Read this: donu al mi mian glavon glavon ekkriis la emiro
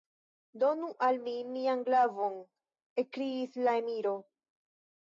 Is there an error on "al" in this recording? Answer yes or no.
no